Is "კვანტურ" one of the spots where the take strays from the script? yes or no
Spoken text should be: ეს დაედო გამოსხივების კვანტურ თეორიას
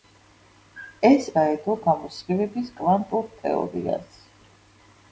no